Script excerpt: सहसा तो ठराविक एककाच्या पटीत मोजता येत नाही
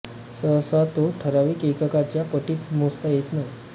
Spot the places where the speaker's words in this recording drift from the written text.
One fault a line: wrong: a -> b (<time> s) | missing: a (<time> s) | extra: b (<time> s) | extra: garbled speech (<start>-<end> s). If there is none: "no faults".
no faults